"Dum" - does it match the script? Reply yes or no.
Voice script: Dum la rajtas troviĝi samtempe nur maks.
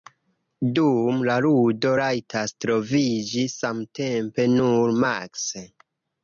yes